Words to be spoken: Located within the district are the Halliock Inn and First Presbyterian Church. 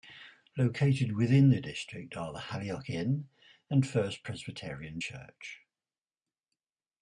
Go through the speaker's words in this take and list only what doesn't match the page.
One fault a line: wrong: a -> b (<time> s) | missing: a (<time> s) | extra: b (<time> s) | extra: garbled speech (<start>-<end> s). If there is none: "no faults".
no faults